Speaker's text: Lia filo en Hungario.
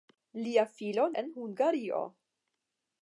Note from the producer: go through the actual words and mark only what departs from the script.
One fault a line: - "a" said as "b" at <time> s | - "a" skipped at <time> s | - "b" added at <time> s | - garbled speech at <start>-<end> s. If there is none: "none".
none